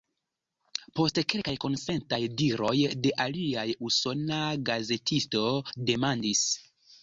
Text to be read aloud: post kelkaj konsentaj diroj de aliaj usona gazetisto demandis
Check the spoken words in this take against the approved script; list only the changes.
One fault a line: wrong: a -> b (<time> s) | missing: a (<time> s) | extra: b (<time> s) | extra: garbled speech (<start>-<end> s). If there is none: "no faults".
no faults